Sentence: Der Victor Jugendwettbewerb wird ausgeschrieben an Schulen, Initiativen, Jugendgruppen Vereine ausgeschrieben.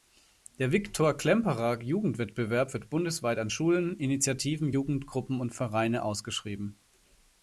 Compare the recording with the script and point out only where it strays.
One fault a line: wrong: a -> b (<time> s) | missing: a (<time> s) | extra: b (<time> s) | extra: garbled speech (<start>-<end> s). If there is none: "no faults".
extra: Klemperer (1.1 s)
wrong: ausgeschrieben -> bundesweit (2.9 s)
extra: und (5.4 s)